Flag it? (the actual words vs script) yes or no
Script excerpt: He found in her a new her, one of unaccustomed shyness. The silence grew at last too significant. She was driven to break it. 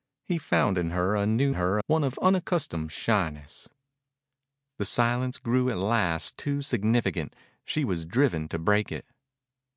no